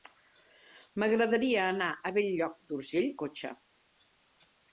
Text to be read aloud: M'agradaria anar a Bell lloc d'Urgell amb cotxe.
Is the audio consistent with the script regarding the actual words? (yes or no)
no